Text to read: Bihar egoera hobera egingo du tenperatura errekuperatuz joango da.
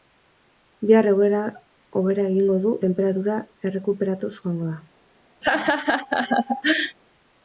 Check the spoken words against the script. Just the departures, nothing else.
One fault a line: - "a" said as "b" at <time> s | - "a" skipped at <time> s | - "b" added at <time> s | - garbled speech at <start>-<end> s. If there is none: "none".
none